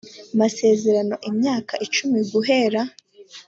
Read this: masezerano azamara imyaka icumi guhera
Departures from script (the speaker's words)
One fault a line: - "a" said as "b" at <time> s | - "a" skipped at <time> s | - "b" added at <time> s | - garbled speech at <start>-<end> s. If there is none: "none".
- "azamara" skipped at 1.1 s